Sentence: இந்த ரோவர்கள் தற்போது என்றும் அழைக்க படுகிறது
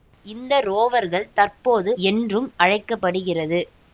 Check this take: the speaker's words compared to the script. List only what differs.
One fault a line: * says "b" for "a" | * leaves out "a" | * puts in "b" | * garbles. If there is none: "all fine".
all fine